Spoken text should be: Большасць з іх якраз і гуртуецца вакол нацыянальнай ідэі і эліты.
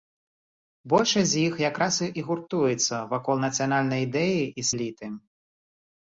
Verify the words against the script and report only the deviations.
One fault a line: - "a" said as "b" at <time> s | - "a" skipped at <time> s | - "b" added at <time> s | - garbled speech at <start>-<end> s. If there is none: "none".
none